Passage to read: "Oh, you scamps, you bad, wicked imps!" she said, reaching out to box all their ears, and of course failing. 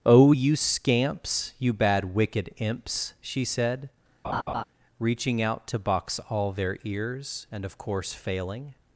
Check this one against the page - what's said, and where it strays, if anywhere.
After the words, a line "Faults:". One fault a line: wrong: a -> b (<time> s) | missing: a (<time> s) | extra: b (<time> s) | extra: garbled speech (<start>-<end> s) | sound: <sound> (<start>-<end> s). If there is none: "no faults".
"Oh, you scamps, you bad, wicked imps!" she said, reaching out to box all their ears, and of course failing.
Faults:
sound: laugh (4.2-4.6 s)